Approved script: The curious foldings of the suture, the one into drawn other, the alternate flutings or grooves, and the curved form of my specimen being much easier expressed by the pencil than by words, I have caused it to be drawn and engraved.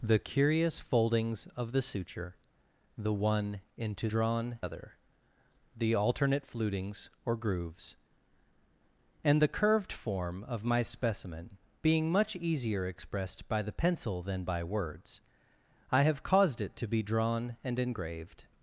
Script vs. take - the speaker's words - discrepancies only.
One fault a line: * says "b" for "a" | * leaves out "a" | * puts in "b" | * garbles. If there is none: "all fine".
all fine